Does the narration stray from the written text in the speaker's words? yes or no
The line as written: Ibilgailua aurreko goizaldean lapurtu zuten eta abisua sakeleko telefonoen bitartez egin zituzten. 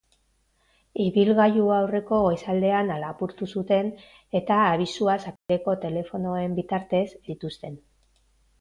yes